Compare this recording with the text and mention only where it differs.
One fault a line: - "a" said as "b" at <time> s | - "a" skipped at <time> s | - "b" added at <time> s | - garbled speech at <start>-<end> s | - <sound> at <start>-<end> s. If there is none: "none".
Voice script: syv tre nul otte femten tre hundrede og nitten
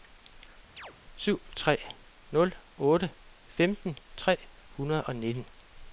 - chirp at 0.8-0.9 s